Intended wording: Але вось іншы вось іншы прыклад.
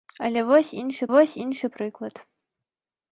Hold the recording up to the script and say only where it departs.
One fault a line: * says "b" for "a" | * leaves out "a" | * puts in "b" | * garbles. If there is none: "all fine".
all fine